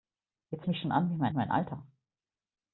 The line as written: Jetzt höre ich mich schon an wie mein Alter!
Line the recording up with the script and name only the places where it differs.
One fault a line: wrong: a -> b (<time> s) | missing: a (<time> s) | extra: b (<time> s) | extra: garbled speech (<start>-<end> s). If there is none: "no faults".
missing: höre (0.7 s)
extra: mein (1.3 s)